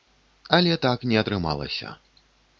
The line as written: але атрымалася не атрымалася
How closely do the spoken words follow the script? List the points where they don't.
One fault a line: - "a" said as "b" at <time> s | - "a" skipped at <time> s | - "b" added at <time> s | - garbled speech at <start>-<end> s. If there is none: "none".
- "атрымалася" said as "так" at 0.8 s